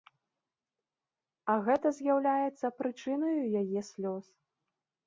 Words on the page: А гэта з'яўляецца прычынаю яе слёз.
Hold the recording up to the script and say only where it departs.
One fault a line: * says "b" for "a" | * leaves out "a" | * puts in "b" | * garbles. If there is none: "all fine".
all fine